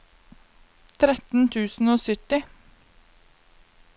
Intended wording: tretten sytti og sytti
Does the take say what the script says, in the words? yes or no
no